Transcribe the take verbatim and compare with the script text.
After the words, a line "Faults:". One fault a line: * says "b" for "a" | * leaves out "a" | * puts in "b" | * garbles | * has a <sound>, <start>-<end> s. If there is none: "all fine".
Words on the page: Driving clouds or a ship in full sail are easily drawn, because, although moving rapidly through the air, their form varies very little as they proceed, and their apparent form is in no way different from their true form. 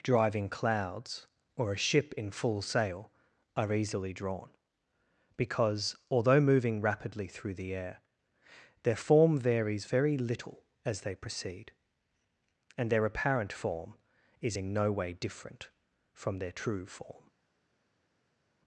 Driving clouds or a ship in full sail are easily drawn, because, although moving rapidly through the air, their form varies very little as they proceed, and their apparent form is in no way different from their true form.
Faults:
all fine